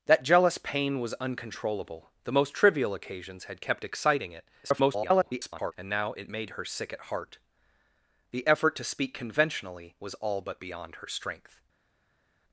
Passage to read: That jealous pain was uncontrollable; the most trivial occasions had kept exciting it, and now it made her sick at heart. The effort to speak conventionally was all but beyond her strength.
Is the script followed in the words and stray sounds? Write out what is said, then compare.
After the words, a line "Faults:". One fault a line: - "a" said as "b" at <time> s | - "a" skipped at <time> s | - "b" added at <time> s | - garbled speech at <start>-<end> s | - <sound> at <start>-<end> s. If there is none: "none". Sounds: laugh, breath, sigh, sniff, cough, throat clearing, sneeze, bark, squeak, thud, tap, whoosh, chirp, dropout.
That jealous pain was uncontrollable; the most trivial occasions had kept exciting it, [garbled] and now it made her sick at heart. The effort to speak conventionally was all but beyond her strength.
Faults:
- garbled speech at 4.6-5.7 s